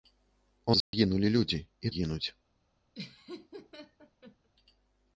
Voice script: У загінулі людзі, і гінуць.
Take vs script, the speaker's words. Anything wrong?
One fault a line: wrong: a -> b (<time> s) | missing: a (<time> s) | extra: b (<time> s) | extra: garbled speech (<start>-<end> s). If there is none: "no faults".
no faults